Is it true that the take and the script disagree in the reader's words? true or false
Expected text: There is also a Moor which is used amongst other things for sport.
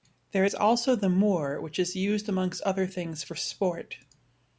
true